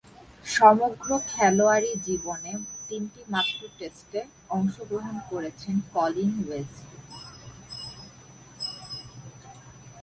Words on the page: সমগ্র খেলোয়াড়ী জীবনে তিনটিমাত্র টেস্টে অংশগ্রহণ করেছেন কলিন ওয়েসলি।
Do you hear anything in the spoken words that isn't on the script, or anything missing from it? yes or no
no